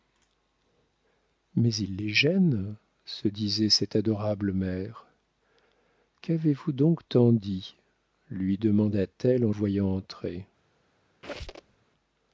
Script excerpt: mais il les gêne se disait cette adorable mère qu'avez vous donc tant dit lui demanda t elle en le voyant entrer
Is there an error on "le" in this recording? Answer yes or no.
yes